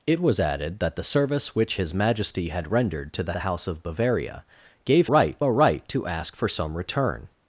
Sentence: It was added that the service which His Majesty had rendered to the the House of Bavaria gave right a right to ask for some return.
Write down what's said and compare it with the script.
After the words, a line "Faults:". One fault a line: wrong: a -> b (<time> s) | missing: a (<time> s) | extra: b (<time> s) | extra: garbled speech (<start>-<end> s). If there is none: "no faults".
It was added that the service which His Majesty had rendered to the the House of Bavaria gave right a right to ask for some return.
Faults:
no faults